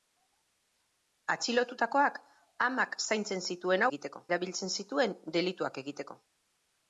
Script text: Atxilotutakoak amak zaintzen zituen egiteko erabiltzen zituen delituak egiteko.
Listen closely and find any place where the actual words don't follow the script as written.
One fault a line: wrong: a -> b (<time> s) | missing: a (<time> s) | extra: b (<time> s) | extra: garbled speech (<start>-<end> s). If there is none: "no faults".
no faults